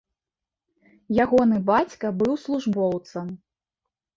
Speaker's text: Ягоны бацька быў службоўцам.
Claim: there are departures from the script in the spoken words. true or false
false